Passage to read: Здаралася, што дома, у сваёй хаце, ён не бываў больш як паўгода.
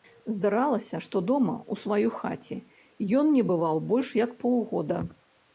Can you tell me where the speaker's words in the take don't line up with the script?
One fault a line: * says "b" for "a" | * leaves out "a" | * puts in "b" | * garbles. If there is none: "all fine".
all fine